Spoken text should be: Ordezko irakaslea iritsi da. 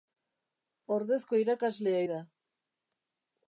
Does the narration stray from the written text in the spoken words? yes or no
yes